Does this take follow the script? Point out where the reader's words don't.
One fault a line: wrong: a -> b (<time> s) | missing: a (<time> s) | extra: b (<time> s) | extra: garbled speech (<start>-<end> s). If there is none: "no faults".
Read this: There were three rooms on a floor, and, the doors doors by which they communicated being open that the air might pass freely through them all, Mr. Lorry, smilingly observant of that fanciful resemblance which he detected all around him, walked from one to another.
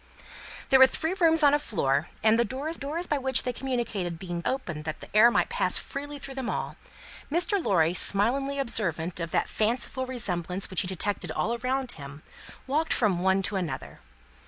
no faults